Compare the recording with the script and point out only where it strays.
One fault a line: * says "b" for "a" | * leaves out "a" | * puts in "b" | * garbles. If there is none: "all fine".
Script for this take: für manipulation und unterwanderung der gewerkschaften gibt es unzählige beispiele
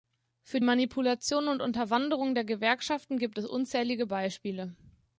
all fine